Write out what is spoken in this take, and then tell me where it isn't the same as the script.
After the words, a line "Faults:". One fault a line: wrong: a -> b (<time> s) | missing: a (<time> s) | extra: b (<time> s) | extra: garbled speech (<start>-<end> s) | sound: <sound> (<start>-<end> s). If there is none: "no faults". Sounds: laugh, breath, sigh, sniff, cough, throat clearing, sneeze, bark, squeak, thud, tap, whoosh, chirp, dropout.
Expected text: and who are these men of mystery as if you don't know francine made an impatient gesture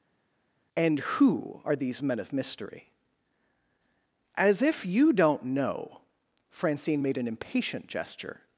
and who are these men of mystery as if you don't know francine made an impatient gesture
Faults:
no faults